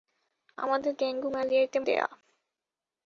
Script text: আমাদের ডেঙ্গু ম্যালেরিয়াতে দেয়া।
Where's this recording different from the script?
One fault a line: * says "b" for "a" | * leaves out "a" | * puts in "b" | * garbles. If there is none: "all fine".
all fine